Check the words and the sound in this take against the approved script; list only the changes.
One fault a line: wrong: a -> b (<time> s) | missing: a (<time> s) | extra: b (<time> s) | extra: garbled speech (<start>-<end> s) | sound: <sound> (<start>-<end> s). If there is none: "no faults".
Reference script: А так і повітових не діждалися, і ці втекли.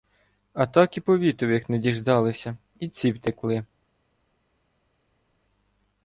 no faults